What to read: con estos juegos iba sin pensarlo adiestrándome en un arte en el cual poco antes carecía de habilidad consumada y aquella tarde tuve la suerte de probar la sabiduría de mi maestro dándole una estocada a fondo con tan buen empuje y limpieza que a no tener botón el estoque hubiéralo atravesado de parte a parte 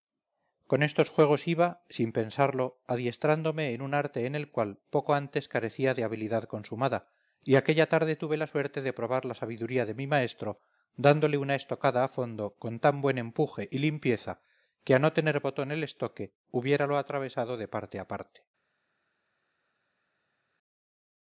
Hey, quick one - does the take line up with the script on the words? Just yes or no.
yes